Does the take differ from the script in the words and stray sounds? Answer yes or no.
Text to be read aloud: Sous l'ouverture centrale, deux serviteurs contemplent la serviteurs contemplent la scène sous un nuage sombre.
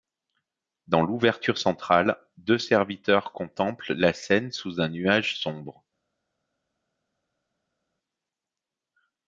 yes